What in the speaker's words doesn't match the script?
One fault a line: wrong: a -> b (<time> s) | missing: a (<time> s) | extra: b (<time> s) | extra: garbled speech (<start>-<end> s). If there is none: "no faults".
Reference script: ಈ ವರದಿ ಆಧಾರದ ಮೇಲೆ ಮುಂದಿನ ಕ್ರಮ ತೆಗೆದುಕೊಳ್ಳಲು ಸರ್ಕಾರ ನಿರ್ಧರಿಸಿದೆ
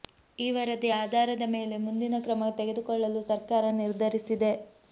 no faults